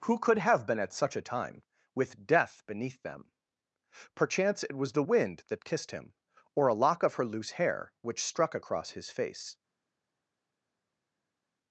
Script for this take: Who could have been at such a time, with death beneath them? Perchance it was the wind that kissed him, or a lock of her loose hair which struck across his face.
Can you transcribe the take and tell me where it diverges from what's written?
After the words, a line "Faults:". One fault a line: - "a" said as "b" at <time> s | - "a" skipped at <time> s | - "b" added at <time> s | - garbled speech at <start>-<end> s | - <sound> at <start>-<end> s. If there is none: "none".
Who could have been at such a time, with death beneath them? Perchance it was the wind that kissed him, or a lock of her loose hair which struck across his face.
Faults:
none